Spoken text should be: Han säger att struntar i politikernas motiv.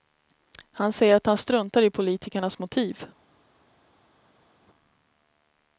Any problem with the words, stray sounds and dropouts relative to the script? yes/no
yes